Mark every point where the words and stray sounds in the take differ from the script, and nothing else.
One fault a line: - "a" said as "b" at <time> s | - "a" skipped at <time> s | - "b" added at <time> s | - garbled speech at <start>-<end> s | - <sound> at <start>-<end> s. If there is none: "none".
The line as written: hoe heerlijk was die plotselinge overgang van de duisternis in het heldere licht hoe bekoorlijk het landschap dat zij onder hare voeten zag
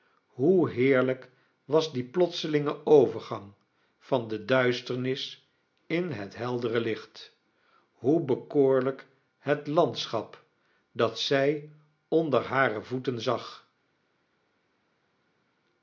none